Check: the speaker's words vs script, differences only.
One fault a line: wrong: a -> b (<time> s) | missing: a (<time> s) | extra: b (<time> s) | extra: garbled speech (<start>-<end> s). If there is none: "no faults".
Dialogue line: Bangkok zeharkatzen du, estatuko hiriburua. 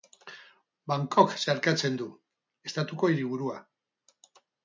no faults